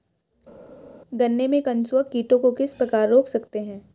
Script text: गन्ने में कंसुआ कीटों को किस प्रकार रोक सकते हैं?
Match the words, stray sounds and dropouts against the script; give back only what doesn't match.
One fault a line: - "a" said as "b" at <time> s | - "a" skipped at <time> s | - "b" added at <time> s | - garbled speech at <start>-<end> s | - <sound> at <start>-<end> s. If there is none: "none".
none